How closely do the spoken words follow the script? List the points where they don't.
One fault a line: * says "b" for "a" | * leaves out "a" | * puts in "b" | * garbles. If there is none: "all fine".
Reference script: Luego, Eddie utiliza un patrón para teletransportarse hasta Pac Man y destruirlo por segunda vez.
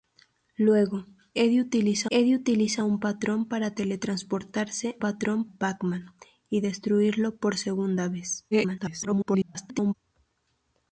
* puts in "Eddie utiliza"
* says "patrón" for "hasta"
* garbles